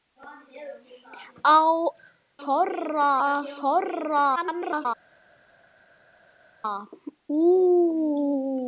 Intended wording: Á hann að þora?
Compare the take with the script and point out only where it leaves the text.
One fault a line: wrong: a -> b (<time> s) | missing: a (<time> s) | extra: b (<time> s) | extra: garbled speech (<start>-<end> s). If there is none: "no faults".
wrong: hann -> þora (2.4 s)
extra: garbled speech (4.4-4.9 s)